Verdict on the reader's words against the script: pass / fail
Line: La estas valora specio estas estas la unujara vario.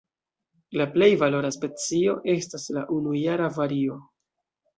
fail